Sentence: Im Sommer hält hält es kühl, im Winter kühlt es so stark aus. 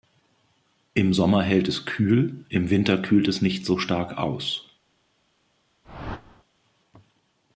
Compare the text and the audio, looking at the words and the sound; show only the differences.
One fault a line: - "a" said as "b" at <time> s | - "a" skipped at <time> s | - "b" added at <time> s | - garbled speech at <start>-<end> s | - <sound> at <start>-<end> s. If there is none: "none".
- "hält" skipped at 1.7 s
- "nicht" added at 3.4 s
- whoosh at 5.8-6.4 s